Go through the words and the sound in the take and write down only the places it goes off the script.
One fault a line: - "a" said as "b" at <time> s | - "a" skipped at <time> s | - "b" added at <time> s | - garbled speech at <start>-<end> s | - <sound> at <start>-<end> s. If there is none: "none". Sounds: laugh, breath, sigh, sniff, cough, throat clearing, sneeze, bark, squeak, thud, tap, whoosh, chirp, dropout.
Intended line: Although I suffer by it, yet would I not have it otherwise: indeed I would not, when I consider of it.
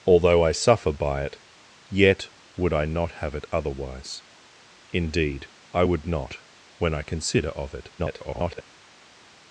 - garbled speech at 8.0-8.6 s